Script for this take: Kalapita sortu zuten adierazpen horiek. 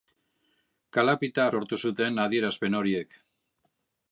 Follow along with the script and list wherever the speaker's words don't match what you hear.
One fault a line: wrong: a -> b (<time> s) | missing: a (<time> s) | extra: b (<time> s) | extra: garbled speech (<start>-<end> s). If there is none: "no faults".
no faults